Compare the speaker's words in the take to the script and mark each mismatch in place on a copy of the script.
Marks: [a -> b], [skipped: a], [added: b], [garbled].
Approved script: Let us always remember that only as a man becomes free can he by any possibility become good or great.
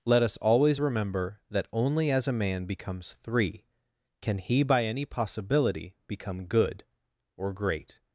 Let us always remember that only as a man becomes [free -> three] can he by any possibility become good or great.